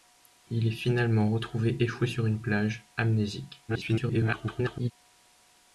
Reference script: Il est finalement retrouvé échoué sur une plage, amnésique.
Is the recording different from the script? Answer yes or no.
yes